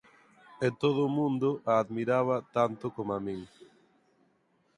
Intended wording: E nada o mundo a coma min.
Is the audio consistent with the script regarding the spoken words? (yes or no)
no